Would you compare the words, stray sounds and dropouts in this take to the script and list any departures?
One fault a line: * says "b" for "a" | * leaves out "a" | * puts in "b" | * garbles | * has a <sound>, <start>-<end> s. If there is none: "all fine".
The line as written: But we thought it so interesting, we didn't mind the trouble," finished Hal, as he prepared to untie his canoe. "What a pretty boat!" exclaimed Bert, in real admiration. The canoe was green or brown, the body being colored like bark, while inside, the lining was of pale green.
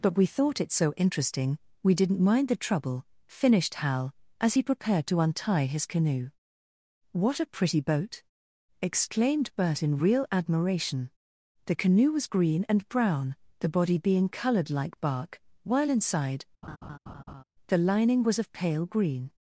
* says "and" for "or"
* has a laugh, 16.6-17.4 s